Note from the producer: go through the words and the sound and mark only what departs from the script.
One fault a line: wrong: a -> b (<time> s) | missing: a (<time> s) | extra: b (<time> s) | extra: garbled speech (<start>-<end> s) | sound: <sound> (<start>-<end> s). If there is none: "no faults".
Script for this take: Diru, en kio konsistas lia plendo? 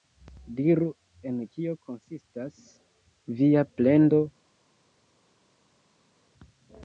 wrong: lia -> via (3.4 s)